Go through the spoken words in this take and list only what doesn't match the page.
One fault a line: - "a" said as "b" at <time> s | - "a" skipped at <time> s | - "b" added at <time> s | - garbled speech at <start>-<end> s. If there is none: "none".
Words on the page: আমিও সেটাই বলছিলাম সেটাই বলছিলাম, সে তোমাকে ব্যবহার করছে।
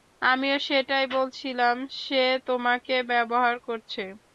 - "সেটাই বলছিলাম" skipped at 1.8 s